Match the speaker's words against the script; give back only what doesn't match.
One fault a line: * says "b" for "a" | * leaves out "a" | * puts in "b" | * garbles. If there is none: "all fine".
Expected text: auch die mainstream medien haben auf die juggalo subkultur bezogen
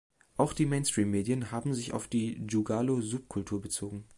* puts in "sich"